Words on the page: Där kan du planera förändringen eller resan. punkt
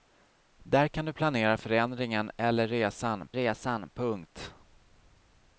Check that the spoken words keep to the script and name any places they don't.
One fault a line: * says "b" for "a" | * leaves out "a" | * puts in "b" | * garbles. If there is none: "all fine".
* puts in "resan"